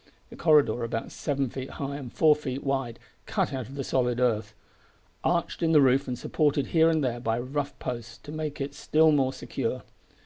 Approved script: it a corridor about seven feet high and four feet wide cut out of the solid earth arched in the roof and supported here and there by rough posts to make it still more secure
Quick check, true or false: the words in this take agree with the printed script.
true